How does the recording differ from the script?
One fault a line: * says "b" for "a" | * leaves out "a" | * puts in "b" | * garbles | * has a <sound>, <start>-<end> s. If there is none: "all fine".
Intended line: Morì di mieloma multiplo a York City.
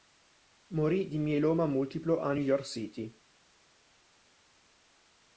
* puts in "New"